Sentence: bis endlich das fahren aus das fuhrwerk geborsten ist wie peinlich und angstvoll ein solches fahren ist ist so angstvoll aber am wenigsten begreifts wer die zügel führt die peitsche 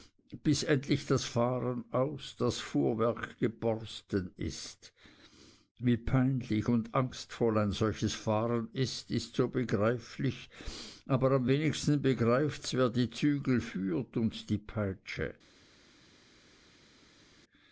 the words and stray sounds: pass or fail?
fail